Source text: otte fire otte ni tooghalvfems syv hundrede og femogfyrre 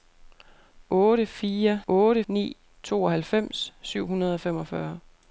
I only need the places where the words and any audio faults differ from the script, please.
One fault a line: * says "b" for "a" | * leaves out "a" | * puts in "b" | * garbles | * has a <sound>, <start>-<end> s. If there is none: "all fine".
all fine